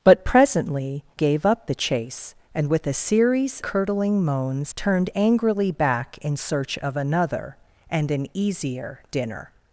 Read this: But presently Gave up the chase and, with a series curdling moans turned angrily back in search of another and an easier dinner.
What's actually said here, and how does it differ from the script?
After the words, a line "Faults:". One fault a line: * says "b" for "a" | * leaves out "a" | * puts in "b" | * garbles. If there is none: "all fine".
But presently Gave up the chase and, with a series curdling moans turned angrily back in search of another and an easier dinner.
Faults:
all fine